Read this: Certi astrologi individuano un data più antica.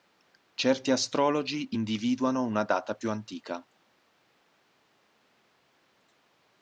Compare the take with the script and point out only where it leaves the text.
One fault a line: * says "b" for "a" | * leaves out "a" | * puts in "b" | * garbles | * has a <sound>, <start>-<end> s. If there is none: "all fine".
* says "una" for "un"